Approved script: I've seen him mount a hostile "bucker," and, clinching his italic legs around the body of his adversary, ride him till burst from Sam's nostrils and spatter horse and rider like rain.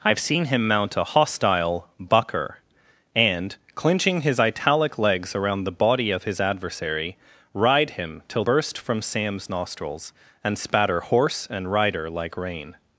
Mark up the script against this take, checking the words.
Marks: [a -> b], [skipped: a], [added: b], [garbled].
I've seen him mount a hostile "bucker," and, clinching his italic legs around the body of his adversary, ride him till burst from Sam's nostrils and spatter horse and rider like rain.